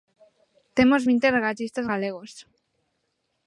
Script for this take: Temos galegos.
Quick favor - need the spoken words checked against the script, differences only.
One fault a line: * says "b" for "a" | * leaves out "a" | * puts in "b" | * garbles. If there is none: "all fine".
* puts in "vinte regatistas"